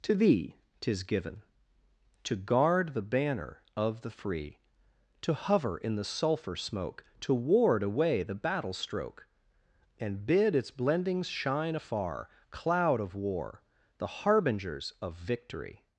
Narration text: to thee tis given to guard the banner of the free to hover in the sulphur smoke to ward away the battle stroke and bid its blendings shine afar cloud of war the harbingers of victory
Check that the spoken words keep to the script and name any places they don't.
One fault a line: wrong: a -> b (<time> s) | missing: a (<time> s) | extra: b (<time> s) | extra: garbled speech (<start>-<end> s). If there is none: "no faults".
no faults